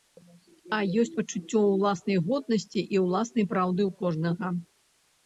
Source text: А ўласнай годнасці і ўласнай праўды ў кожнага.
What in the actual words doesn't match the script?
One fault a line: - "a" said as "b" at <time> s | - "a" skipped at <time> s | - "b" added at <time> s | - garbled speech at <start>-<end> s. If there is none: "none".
- "ёсць пачуццё" added at 1.0 s